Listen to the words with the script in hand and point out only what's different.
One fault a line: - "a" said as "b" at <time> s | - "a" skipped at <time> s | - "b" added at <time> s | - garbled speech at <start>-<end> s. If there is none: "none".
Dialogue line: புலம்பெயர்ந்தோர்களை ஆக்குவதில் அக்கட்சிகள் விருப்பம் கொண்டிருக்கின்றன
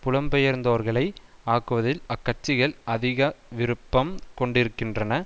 - "அதிக" added at 2.9 s